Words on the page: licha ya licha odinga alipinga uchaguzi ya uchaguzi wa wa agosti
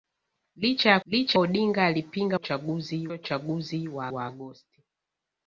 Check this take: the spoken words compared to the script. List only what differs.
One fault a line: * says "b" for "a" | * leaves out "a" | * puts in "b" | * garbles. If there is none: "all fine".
all fine